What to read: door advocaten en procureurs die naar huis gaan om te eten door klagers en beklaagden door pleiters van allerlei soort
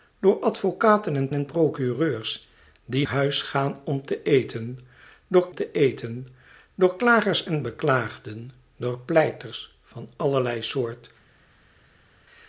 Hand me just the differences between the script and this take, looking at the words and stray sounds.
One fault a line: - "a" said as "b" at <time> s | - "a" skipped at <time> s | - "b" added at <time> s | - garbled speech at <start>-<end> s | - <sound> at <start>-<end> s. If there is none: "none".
- "en" added at 1.3 s
- "naar" skipped at 3.1 s
- "te eten door" added at 5.5 s